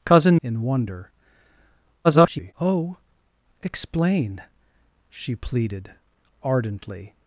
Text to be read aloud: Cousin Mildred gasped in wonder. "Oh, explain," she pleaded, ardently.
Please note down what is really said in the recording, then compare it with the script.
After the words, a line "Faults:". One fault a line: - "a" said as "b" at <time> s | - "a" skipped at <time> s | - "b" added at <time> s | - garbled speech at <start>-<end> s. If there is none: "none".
Cousin In wonder. [garbled] "Oh, explain," she pleaded, ardently.
Faults:
- "Mildred gasped" skipped at 0.4 s
- garbled speech at 2.0-2.5 s